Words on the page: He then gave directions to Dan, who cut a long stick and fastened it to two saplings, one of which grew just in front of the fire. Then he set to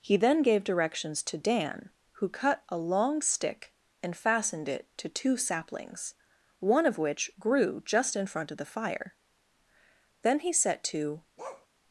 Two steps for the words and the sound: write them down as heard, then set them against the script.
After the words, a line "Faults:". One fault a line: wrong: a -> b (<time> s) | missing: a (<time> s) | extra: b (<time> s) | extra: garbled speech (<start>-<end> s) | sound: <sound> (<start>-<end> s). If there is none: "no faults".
He then gave directions to Dan, who cut a long stick and fastened it to two saplings, one of which grew just in front of the fire. Then he set to
Faults:
sound: bark (11.4-11.7 s)